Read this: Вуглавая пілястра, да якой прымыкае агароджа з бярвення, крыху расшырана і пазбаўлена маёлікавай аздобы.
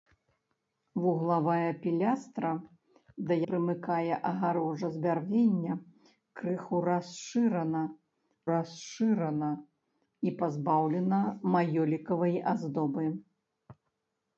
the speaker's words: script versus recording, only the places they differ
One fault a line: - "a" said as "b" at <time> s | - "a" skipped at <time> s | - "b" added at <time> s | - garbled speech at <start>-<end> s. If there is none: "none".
- "якой" skipped at 3.3 s
- "расшырана" added at 8.5 s